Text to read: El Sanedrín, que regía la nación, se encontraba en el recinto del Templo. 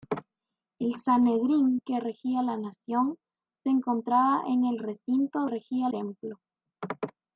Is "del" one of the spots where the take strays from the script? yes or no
yes